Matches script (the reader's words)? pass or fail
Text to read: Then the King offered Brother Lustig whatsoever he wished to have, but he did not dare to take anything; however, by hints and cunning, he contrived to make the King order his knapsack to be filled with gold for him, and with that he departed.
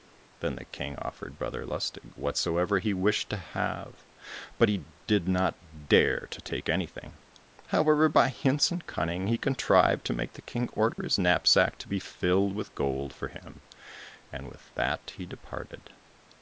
pass